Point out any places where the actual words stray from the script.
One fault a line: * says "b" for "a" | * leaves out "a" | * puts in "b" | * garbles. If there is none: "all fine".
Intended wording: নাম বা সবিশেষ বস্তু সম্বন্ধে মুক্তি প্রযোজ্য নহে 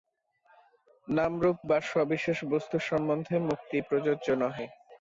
* puts in "রূপ"